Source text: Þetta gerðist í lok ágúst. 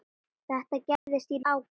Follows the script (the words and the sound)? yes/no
no